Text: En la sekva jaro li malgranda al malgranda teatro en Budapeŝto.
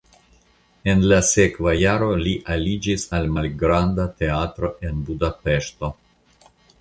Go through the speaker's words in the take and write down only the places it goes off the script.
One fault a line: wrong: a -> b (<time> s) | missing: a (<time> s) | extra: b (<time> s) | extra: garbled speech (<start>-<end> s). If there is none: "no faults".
wrong: malgranda -> aliĝis (2.6 s)